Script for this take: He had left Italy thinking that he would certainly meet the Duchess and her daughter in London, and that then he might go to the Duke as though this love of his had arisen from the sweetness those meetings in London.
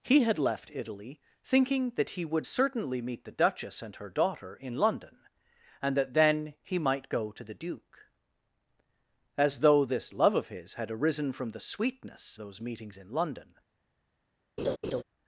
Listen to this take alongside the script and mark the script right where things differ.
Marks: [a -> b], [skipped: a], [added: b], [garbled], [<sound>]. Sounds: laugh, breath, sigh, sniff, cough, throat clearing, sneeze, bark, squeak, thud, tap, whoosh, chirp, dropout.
He had left Italy thinking that he would certainly meet the Duchess and her daughter in London, and that then he might go to the Duke as though this love of his had arisen from the sweetness those meetings in London. [laugh]